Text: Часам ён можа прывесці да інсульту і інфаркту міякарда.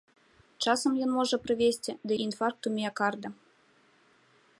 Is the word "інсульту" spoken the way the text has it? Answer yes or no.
no